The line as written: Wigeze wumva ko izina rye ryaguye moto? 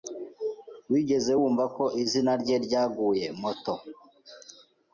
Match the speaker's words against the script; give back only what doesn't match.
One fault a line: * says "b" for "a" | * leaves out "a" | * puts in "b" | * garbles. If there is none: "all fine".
all fine